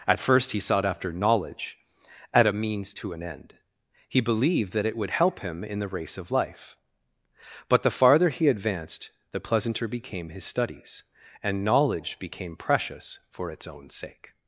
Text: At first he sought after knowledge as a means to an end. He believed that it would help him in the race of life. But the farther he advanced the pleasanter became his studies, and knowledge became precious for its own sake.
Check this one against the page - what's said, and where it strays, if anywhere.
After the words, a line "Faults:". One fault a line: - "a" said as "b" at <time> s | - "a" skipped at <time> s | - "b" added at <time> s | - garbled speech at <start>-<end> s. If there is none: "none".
At first he sought after knowledge at a means to an end. He believed that it would help him in the race of life. But the farther he advanced the pleasanter became his studies, and knowledge became precious for its own sake.
Faults:
- "as" said as "at" at 2.3 s